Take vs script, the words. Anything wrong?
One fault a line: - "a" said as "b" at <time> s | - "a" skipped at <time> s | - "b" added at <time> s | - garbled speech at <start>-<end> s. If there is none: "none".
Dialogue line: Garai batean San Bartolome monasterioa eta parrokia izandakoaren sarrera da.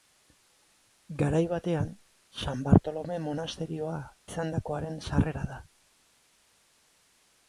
- "eta parrokia" skipped at 4.0 s